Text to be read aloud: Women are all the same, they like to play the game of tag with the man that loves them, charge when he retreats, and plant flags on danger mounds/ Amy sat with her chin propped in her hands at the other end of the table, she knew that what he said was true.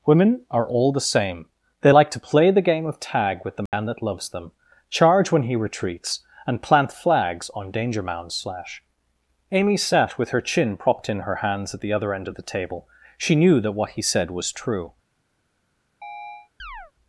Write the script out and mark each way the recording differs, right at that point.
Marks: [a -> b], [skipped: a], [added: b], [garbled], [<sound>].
Women are all the same, they like to play the game of tag with the man [dropout] that loves them, charge when he retreats, and plant flags on danger mounds/ [added: slash] Amy sat with her chin propped in her hands at the other end of the table, she knew that what he said was true. [chirp]